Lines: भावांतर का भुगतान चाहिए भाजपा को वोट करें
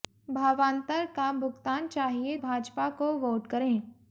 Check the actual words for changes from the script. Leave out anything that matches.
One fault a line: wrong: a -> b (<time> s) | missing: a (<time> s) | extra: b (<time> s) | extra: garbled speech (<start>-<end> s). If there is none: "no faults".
no faults